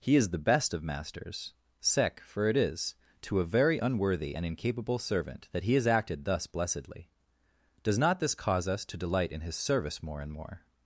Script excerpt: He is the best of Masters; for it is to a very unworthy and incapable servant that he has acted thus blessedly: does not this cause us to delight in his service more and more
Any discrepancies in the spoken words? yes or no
yes